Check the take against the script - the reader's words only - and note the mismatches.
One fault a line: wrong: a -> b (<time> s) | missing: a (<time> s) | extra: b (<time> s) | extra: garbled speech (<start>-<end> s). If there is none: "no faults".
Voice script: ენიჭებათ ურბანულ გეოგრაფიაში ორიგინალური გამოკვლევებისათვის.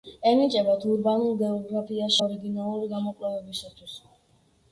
no faults